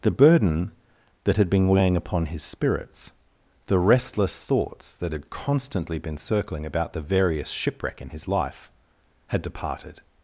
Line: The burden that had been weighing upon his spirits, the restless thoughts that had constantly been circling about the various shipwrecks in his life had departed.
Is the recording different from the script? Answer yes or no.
yes